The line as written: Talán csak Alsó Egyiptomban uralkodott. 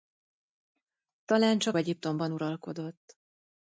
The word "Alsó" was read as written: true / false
false